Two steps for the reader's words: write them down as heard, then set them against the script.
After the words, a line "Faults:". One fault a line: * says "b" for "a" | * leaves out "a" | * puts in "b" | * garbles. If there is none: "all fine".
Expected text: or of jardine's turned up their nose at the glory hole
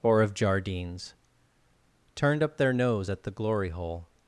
or of jardine's turned up their nose at the glory hole
Faults:
all fine